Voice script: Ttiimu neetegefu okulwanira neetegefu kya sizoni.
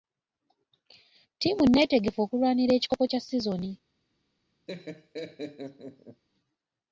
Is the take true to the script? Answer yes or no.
no